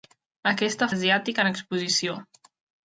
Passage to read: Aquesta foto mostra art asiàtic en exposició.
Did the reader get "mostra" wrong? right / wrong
wrong